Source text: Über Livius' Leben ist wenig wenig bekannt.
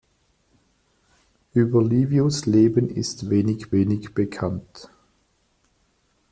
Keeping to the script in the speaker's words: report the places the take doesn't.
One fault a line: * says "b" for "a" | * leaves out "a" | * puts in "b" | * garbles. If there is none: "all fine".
all fine